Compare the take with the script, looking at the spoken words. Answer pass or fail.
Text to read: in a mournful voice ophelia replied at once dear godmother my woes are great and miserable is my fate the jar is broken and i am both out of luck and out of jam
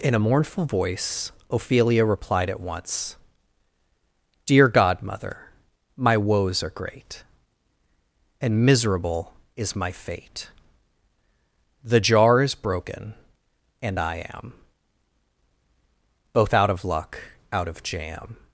fail